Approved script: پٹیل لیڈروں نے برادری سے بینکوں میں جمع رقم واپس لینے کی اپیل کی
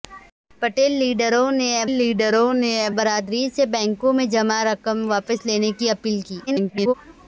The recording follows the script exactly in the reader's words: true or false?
false